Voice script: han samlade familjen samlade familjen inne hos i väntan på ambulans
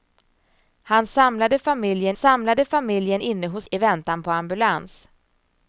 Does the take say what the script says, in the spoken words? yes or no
yes